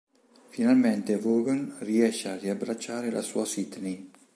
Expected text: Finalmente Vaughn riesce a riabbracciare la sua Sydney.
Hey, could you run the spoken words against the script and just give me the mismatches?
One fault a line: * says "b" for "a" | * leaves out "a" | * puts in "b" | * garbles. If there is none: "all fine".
all fine